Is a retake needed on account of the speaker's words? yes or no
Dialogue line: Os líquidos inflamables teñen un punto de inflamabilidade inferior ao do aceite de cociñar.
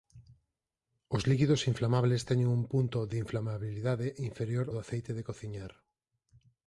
yes